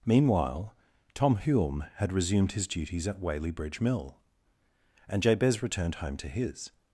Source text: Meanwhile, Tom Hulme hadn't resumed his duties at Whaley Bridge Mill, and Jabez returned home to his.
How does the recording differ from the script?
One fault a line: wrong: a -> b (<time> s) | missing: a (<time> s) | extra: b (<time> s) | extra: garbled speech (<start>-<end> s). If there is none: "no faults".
wrong: hadn't -> had (1.9 s)